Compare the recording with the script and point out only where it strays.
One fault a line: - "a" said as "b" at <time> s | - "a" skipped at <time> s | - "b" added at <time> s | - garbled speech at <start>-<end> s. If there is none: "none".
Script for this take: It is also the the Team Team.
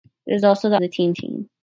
none